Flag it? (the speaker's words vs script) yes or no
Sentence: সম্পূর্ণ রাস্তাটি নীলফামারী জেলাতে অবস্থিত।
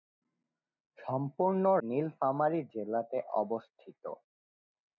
yes